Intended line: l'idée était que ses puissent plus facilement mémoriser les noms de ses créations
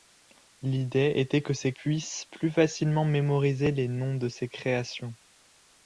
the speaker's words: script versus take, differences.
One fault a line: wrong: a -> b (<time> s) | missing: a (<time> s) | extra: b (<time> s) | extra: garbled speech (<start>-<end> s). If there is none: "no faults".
no faults